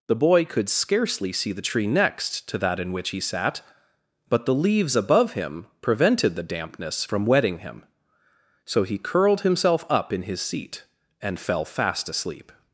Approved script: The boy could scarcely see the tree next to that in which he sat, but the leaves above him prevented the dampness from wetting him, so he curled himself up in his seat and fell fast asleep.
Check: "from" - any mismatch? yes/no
no